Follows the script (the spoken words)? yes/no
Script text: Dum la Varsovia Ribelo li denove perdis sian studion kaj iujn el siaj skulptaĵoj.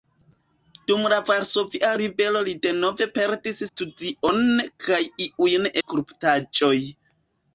no